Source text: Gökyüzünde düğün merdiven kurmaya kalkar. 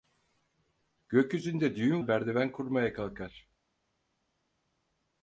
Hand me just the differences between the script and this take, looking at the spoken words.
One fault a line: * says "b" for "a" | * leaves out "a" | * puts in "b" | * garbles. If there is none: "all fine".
all fine